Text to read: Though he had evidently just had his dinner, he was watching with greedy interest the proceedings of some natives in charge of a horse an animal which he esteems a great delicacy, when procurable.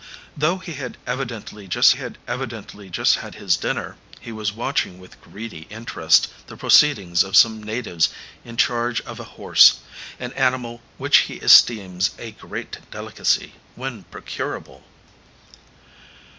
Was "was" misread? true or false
false